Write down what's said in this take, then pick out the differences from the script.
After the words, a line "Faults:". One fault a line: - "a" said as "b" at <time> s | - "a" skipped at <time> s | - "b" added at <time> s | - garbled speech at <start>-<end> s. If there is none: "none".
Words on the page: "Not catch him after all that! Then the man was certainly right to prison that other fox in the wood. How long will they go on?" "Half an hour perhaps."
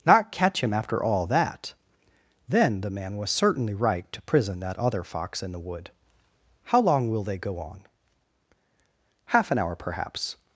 "Not catch him after all that! Then the man was certainly right to prison that other fox in the wood. How long will they go on?" "Half an hour perhaps."
Faults:
none